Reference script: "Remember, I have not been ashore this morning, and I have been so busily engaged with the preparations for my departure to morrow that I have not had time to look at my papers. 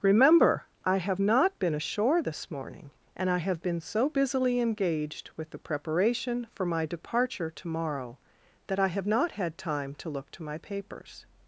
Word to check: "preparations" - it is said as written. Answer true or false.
false